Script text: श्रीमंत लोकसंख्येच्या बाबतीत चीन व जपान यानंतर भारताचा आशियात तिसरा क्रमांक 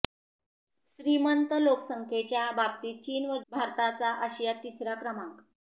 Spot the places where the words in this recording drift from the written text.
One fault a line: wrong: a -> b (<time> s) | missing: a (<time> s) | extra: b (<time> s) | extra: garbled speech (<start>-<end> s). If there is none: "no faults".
missing: जपान यानंतर (3.4 s)